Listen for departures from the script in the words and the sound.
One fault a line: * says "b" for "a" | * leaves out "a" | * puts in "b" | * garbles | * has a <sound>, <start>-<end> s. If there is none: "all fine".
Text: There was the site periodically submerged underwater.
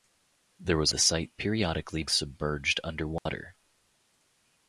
* has a dropout, 3.2-3.3 s